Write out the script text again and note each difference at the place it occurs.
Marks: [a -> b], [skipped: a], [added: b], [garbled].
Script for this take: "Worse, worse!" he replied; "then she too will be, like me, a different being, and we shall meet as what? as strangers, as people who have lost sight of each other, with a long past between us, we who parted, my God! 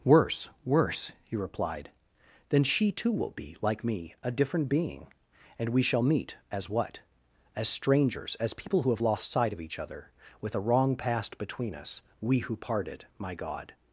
"Worse, worse!" he replied; "then she too will be, like me, a different being, and we shall meet as what? as strangers, as people who have lost sight of each other, with a [long -> wrong] past between us, we who parted, my God!